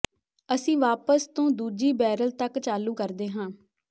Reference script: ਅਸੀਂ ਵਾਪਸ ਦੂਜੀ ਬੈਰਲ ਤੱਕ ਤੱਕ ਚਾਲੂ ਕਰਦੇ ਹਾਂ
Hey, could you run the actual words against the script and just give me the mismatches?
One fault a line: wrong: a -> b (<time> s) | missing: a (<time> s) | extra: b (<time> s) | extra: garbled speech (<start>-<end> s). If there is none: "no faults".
extra: ਤੋਂ (1.3 s)
missing: ਤੱਕ (2.6 s)